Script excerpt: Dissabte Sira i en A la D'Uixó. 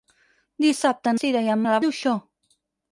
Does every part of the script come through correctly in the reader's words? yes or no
yes